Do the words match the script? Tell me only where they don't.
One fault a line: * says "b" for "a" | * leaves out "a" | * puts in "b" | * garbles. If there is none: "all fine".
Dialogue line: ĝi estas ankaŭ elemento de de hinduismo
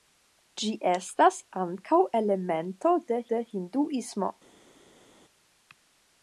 all fine